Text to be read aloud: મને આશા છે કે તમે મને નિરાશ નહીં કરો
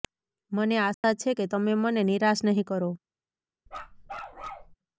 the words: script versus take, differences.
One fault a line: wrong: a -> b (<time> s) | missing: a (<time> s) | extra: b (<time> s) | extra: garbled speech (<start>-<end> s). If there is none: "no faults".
no faults